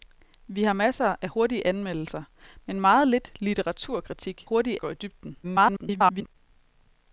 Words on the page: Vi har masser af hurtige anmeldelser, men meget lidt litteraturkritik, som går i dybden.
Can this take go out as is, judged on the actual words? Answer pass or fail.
fail